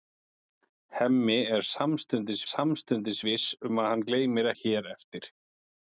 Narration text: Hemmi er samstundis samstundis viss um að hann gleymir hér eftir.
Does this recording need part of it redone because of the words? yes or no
no